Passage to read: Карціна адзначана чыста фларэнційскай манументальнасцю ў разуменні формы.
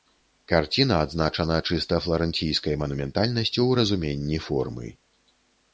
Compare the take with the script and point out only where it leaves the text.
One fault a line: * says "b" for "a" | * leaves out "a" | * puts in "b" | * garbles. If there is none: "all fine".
all fine